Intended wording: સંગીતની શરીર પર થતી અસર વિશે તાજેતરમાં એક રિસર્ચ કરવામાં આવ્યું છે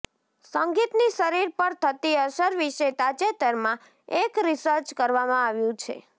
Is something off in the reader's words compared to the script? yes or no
no